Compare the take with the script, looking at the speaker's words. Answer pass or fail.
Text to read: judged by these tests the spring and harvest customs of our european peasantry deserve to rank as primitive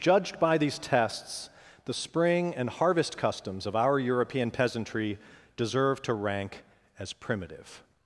pass